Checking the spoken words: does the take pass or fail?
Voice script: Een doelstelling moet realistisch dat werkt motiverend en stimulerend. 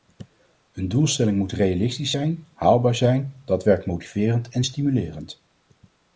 fail